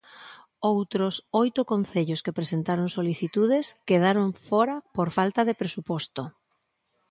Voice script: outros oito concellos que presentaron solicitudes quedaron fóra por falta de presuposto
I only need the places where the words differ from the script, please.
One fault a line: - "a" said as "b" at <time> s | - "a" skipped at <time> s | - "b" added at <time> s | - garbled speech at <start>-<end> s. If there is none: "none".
none